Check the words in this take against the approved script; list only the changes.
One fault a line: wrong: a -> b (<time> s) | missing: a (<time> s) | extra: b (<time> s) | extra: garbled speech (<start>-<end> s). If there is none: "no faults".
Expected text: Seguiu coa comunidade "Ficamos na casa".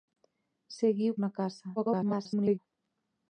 missing: coa comunidade Ficamos (1.1 s)
extra: garbled speech (1.8-2.6 s)